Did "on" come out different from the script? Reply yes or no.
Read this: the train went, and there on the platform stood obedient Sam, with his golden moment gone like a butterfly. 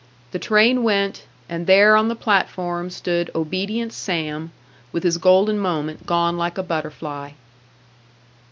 no